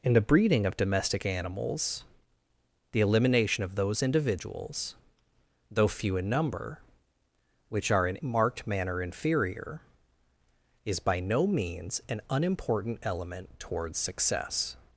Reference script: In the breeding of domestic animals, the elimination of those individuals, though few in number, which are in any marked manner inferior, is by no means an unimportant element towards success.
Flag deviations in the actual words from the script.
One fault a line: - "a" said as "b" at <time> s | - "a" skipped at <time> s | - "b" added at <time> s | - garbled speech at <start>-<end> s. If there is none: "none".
- "any" skipped at 8.2 s